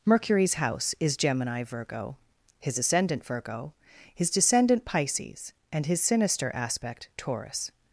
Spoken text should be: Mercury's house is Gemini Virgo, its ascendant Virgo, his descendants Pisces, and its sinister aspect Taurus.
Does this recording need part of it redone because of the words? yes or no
yes